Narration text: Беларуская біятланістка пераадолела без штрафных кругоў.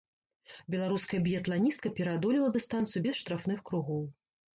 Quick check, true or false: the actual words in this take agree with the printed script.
false